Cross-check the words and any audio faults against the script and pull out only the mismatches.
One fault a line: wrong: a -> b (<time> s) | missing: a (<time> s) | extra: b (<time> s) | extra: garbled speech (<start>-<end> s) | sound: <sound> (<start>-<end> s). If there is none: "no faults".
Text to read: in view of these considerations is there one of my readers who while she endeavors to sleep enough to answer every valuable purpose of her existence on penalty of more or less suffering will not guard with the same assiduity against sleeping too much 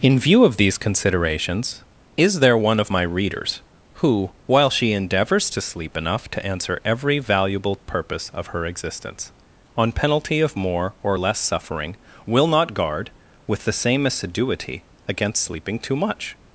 no faults